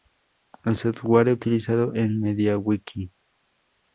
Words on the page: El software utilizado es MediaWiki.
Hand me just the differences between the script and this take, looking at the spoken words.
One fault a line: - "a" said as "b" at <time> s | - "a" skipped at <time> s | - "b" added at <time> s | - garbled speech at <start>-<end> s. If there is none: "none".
none